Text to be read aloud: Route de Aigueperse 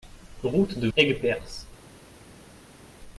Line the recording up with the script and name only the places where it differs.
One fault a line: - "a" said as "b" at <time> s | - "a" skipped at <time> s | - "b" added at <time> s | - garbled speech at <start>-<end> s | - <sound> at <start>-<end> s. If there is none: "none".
none